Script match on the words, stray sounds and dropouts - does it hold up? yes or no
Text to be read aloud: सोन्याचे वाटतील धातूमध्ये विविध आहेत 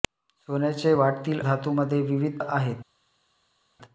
yes